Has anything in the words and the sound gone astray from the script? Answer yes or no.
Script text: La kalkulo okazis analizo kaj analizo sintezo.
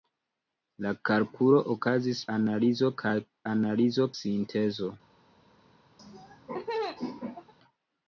yes